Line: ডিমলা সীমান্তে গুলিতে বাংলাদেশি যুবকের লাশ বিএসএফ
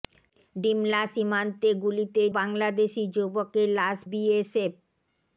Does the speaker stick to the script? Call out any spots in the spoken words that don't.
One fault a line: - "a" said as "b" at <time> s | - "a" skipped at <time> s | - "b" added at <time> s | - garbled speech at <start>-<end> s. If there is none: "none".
none